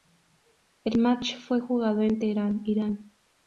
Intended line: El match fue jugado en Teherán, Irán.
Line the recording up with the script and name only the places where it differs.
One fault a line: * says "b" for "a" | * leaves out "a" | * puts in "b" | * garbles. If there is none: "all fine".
all fine